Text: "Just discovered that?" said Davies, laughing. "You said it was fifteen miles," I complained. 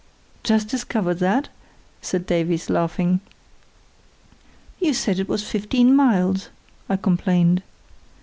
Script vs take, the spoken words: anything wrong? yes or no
no